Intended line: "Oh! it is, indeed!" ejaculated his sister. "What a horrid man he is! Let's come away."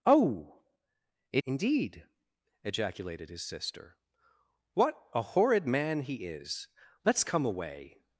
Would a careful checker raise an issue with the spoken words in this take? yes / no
yes